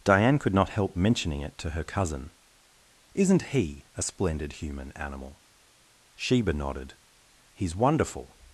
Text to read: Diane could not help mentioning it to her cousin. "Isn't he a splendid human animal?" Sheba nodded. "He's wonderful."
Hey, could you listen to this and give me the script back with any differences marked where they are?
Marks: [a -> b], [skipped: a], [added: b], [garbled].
Diane could not help mentioning it to her cousin. "Isn't he a splendid human animal?" Sheba nodded. "He's wonderful."